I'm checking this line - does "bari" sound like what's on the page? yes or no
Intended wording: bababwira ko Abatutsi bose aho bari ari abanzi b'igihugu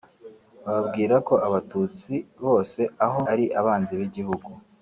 no